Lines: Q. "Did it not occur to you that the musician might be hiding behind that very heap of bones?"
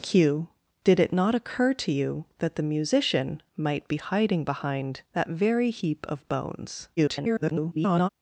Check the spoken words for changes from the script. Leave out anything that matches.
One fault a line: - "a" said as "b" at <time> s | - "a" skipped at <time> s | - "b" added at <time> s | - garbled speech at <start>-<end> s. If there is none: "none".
- garbled speech at 7.0-8.1 s